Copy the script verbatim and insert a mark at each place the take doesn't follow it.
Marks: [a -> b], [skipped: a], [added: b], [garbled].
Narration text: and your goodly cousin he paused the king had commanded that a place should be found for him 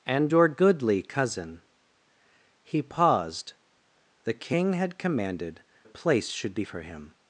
and your goodly cousin he paused the king had commanded [skipped: that] a place should be [skipped: found] for him